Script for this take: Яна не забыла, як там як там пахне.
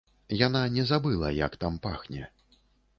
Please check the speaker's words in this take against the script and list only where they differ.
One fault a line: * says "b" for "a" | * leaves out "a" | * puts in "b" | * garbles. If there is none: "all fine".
* leaves out "як там"